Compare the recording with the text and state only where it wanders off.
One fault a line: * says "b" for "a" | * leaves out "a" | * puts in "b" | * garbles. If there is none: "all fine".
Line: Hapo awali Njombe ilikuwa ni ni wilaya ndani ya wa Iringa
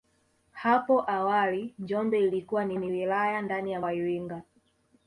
all fine